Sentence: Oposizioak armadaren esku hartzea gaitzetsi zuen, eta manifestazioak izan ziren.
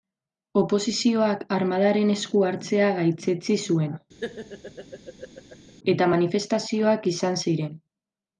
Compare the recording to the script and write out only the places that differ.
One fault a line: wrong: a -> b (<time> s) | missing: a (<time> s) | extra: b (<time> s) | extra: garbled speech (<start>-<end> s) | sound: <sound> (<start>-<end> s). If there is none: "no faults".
sound: laugh (4.2-5.7 s)